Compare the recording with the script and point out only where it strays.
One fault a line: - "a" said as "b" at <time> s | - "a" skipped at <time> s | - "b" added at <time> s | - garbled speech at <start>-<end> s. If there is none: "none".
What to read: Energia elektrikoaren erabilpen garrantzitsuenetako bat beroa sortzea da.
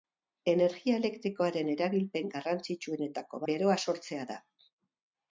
- "bat" skipped at 3.5 s